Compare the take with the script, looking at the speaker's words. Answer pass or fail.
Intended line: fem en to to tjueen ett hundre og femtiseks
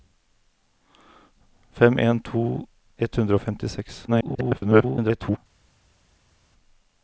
fail